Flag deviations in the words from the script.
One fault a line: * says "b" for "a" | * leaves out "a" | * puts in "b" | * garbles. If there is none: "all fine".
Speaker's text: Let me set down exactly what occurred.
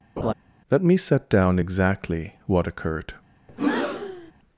all fine